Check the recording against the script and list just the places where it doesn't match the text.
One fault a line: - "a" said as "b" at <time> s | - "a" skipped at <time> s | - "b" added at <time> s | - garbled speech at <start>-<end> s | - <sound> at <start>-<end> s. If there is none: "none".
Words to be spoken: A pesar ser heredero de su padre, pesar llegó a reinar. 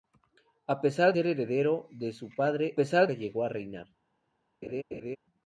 - laugh at 4.6-5.2 s